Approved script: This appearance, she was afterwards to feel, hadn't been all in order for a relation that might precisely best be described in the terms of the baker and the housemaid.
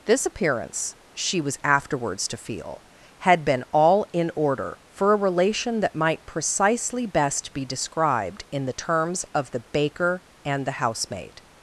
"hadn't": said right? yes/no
no